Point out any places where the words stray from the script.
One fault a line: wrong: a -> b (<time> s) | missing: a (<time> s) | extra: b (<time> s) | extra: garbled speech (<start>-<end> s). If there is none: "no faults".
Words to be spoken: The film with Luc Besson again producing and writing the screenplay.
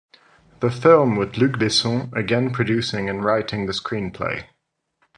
no faults